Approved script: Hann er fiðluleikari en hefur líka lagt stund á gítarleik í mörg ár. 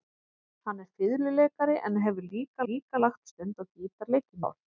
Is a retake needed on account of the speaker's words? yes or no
yes